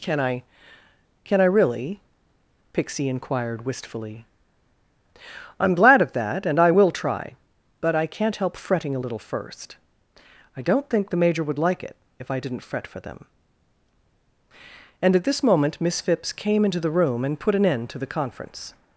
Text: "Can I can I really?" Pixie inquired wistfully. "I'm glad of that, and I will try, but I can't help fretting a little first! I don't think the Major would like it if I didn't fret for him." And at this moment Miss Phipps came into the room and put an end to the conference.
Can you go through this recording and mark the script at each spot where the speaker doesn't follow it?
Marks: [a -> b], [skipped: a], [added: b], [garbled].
"Can I can I really?" Pixie inquired wistfully. "I'm glad of that, and I will try, but I can't help fretting a little first! I don't think the Major would like it if I didn't fret for [him." -> them] And at this moment Miss Phipps came into the room and put an end to the conference.